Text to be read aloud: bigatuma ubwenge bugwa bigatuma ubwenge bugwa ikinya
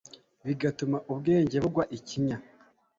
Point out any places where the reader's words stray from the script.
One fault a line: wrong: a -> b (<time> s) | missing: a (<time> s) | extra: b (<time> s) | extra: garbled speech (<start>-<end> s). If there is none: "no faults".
missing: bigatuma ubwenge bugwa (1.8 s)